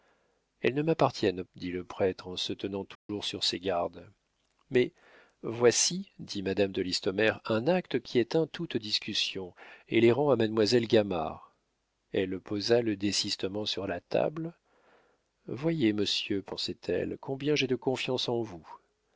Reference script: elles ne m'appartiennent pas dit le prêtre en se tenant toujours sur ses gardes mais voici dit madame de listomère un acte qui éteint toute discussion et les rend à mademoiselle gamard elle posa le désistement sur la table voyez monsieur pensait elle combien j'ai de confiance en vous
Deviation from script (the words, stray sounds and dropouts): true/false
true